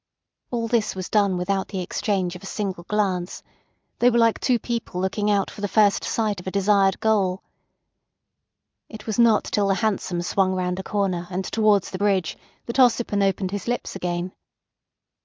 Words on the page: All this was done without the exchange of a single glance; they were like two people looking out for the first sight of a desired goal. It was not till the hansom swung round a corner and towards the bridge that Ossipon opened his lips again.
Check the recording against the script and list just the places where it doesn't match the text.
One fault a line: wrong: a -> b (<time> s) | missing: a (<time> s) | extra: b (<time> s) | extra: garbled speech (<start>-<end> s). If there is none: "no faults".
no faults